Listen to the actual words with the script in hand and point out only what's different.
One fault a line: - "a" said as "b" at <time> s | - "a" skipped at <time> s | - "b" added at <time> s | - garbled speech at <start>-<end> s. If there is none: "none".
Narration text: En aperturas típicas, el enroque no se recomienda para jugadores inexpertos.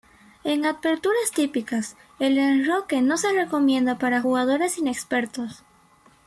none